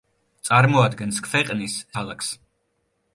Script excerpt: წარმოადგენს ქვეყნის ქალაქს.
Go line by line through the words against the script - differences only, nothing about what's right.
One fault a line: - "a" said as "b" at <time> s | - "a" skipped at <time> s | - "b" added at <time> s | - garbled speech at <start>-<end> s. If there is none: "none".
none